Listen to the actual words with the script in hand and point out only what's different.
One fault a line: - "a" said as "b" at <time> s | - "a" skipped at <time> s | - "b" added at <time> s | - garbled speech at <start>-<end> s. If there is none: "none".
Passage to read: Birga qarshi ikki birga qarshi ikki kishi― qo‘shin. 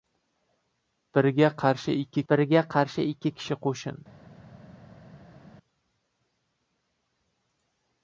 none